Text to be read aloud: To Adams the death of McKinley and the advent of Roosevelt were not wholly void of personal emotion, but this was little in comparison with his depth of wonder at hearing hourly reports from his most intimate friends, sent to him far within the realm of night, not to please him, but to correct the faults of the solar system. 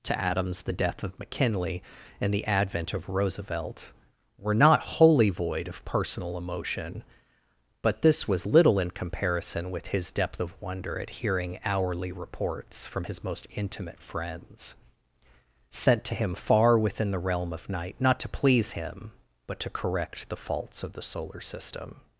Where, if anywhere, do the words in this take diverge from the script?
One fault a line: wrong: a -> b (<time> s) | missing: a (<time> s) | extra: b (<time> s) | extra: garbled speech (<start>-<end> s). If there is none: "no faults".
no faults